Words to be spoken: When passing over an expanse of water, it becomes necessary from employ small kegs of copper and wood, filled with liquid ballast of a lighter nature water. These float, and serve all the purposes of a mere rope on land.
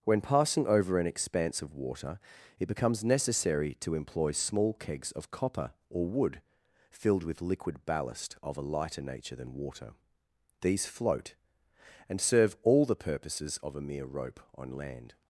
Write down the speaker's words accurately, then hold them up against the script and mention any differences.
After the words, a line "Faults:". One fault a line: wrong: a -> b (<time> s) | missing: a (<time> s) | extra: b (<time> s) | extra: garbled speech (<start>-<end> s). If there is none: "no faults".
When passing over an expanse of water, it becomes necessary to employ small kegs of copper or wood, filled with liquid ballast of a lighter nature than water. These float, and serve all the purposes of a mere rope on land.
Faults:
wrong: from -> to (3.8 s)
wrong: and -> or (5.9 s)
extra: than (9.4 s)